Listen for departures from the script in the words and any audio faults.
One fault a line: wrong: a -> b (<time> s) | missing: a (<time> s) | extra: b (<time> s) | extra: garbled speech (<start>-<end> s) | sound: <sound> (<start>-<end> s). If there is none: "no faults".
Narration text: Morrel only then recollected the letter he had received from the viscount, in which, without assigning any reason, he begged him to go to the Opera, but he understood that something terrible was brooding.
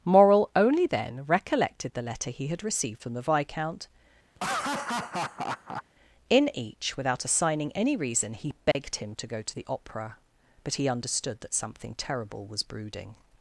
sound: laugh (4.3-5.8 s)
wrong: which -> each (6.5 s)
sound: dropout (8.7-8.8 s)